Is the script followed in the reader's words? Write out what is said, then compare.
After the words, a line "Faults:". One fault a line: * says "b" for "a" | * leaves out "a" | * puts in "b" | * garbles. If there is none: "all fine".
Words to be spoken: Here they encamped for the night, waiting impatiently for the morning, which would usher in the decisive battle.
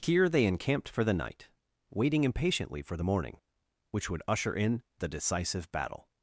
Here they encamped for the night, waiting impatiently for the morning, which would usher in the decisive battle.
Faults:
all fine